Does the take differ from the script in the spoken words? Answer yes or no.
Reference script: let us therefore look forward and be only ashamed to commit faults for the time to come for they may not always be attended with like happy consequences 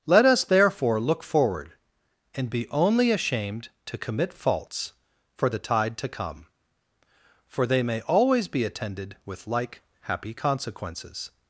yes